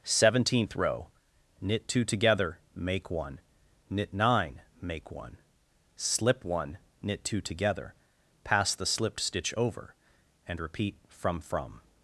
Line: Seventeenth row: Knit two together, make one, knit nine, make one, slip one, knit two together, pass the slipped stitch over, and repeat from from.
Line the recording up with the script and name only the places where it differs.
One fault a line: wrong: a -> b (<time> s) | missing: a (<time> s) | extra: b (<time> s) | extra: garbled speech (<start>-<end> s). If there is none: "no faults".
no faults